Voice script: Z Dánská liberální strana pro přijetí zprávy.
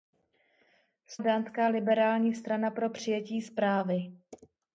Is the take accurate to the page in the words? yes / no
yes